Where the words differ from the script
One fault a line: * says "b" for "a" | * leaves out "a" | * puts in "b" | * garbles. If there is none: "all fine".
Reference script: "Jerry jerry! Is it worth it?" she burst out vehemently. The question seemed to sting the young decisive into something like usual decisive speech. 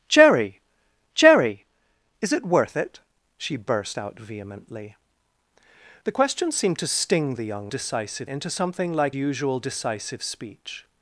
all fine